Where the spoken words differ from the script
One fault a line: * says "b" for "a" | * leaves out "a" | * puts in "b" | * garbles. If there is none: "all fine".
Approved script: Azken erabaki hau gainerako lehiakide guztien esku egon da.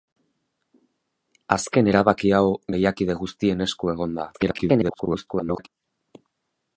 * leaves out "gainerako"
* garbles